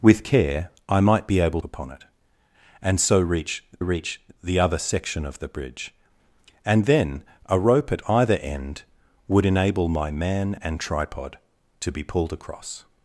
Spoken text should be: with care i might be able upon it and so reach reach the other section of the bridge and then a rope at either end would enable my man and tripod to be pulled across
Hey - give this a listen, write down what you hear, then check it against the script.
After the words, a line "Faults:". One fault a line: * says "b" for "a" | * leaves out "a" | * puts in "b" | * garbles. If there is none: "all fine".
with care i might be able upon it and so reach reach the other section of the bridge and then a rope at either end would enable my man and tripod to be pulled across
Faults:
all fine